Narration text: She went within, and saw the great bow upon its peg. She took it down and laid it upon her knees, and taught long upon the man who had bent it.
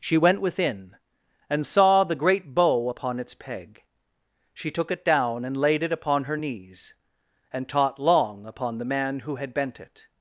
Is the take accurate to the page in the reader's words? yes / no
yes